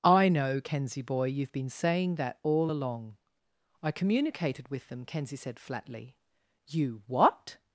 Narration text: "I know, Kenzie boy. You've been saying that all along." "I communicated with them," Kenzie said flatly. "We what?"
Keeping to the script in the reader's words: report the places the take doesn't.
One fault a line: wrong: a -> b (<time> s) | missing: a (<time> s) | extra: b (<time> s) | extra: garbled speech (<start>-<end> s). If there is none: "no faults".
wrong: We -> You (6.7 s)